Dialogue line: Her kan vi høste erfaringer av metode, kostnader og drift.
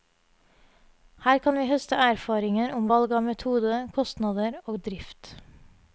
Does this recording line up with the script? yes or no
no